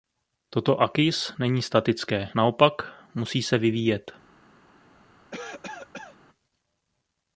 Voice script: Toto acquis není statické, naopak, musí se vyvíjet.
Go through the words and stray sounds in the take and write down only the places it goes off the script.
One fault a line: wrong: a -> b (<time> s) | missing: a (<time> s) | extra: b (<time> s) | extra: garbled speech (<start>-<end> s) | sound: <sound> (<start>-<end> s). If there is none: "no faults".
sound: cough (5.3-6.2 s)